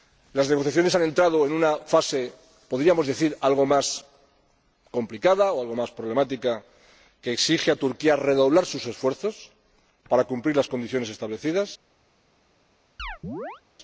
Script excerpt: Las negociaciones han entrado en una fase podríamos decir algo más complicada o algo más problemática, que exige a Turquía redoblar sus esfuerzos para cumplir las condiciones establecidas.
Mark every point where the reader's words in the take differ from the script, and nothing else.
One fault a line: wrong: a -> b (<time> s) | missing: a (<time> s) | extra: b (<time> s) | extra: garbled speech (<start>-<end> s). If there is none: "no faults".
no faults